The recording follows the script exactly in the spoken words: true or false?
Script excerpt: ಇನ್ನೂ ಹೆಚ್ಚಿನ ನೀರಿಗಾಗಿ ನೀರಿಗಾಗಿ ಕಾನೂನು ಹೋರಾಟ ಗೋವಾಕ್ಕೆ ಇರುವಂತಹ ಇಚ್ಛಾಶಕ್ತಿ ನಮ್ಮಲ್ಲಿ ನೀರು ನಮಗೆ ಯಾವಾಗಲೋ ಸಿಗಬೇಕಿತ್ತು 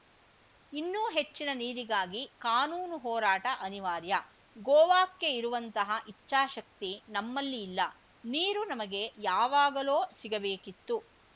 false